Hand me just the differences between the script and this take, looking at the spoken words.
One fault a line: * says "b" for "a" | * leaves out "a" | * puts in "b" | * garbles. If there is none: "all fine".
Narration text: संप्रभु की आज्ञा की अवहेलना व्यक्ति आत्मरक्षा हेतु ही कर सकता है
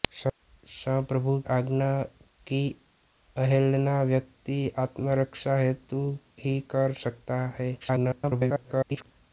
* leaves out "की"
* garbles